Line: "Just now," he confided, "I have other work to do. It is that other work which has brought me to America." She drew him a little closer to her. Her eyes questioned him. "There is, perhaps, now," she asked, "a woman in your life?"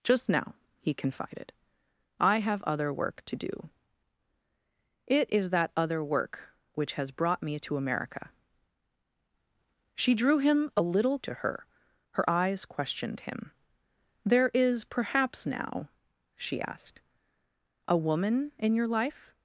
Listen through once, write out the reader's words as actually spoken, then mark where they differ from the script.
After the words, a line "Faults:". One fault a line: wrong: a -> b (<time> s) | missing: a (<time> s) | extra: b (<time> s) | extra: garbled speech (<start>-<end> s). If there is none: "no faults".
"Just now," he confided, "I have other work to do. It is that other work which has brought me to America." She drew him a little to her. Her eyes questioned him. "There is, perhaps, now," she asked, "a woman in your life?"
Faults:
missing: closer (11.2 s)